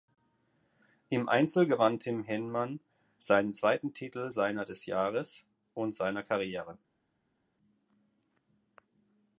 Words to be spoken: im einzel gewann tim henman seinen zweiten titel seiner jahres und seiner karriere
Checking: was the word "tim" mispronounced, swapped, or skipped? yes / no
no